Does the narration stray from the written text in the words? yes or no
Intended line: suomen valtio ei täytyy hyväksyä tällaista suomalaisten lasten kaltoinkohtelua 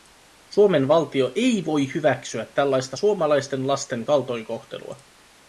yes